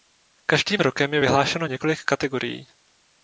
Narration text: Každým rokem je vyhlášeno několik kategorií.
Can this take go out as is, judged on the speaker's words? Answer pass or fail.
pass